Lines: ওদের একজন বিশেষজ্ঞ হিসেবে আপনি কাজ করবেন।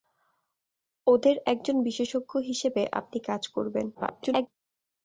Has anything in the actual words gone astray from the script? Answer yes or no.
yes